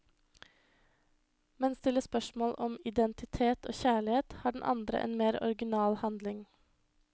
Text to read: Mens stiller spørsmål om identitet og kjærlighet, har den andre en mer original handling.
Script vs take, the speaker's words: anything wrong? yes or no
no